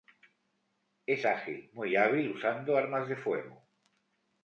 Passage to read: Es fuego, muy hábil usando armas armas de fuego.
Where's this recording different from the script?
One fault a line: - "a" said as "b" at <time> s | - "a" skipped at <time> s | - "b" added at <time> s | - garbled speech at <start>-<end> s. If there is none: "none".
- "fuego" said as "ágil" at 1.3 s
- "armas" skipped at 3.1 s